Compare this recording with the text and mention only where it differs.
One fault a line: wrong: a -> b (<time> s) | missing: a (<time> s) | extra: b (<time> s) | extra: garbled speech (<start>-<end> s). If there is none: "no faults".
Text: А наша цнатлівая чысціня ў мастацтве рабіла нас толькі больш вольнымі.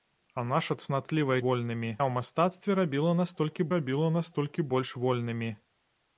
wrong: чысціня -> вольнымі (1.5 s)
extra: рабіла нас толькі (3.8 s)